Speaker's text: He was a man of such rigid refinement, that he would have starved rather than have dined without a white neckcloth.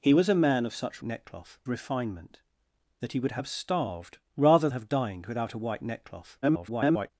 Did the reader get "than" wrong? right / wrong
wrong